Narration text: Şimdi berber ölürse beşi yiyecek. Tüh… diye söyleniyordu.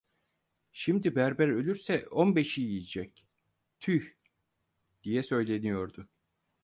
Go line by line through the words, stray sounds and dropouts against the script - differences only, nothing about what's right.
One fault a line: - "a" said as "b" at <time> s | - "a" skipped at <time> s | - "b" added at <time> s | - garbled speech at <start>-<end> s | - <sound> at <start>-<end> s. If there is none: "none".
- "on" added at 2.1 s